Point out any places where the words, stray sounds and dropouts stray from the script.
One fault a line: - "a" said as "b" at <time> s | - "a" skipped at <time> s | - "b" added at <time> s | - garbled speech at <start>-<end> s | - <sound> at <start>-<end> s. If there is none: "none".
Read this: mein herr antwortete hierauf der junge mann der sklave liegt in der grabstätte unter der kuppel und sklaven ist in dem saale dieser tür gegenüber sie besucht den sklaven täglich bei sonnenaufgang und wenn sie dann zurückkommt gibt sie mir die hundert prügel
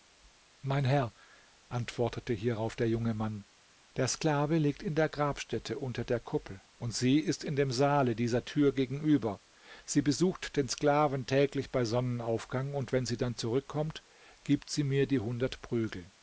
- "sklaven" said as "sie" at 7.0 s